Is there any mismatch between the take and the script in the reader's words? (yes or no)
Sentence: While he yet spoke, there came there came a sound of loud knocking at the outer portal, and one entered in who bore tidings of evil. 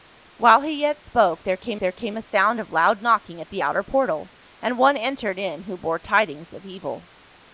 no